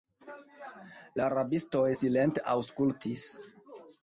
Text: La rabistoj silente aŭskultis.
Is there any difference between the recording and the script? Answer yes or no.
no